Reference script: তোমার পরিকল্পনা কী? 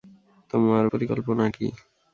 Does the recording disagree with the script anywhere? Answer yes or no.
no